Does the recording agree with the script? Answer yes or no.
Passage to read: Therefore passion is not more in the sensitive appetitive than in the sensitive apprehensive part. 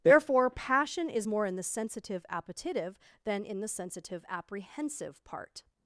no